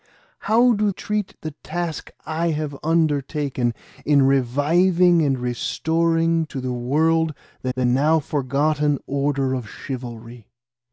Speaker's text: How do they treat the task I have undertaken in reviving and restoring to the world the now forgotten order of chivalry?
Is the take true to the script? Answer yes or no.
no